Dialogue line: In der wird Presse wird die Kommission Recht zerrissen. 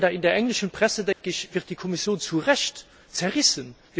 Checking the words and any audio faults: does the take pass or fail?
fail